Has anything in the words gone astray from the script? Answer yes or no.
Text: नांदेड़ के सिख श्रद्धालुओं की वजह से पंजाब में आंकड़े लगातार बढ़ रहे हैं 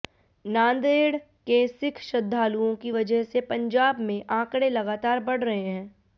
no